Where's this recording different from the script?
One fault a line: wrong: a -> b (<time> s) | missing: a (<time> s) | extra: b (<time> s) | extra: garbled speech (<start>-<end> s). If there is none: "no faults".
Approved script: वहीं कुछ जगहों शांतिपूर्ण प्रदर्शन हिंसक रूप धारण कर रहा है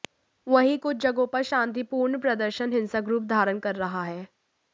extra: पर (1.3 s)